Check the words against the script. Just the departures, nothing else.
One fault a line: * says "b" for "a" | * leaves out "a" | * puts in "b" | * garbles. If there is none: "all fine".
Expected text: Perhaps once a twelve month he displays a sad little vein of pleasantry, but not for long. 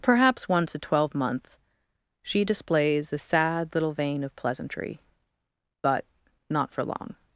* says "she" for "he"